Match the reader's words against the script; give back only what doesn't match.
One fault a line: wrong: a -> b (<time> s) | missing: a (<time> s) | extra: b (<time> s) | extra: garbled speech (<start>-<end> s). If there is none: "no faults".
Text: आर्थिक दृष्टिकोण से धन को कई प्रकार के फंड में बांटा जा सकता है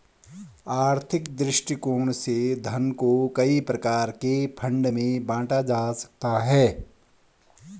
no faults